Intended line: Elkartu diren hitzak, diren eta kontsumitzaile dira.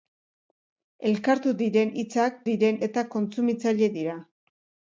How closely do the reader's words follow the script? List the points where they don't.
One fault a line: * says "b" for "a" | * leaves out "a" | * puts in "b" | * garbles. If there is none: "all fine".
all fine